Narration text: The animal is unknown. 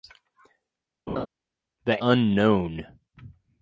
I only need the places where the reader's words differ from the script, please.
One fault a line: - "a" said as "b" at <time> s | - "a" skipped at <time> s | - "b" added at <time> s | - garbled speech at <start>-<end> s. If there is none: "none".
- "animal is" skipped at 2.0 s